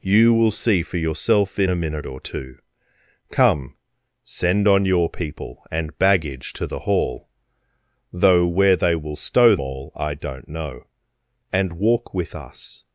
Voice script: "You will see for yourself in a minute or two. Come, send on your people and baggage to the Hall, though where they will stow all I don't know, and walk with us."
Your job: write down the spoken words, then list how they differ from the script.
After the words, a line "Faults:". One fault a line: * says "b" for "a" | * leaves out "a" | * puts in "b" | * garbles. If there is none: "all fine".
"You will see for yourself in a minute or two. Come, send on your people and baggage to the Hall, though where they will stow all I don't know, and walk with us."
Faults:
all fine